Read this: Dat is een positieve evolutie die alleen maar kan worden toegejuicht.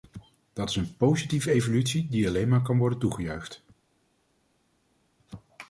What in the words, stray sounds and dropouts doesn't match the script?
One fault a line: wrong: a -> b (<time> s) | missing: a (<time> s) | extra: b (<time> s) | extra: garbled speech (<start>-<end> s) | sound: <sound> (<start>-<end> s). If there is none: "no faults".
no faults